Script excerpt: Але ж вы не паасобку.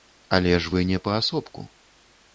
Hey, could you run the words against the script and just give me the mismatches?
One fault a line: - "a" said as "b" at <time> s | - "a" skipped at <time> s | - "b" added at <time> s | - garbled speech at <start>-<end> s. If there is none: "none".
none